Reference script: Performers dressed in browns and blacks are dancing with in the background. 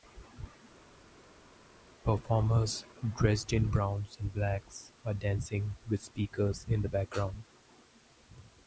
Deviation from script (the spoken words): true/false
true